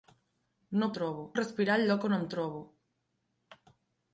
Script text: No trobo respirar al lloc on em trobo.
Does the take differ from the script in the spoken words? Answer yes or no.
no